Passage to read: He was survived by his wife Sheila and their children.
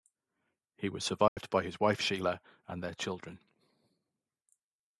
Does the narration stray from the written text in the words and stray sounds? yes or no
yes